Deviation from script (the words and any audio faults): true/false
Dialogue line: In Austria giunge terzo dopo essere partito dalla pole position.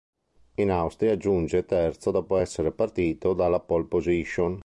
false